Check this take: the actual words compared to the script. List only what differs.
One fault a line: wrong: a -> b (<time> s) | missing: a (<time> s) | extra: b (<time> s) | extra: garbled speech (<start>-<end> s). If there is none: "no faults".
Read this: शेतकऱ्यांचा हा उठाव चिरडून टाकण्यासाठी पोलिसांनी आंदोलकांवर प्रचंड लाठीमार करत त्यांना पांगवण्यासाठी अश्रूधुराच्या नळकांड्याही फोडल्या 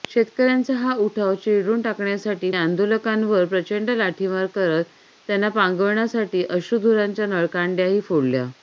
missing: पोलिसांनी (2.5 s)